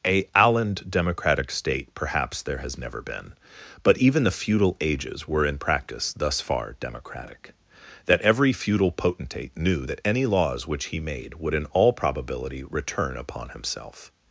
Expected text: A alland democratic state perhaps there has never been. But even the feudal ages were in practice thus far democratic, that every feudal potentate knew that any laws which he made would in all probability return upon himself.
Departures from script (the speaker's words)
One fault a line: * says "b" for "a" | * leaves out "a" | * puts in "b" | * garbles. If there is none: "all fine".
all fine